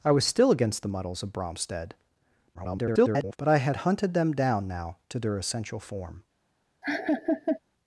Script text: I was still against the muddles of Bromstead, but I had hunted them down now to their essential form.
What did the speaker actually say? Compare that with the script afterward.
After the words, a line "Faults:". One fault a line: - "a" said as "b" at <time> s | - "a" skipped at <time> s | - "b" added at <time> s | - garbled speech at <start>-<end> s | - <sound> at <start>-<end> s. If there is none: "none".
I was still against the muddles of Bromstead, [garbled] but I had hunted them down now to their essential form.
Faults:
- garbled speech at 2.5-3.4 s
- laugh at 6.8-7.6 s